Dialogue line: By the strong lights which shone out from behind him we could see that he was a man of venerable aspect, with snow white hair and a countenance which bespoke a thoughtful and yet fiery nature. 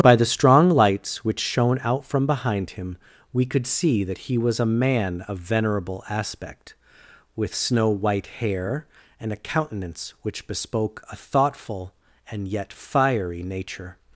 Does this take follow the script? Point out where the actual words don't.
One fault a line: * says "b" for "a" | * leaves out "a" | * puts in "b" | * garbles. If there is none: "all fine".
all fine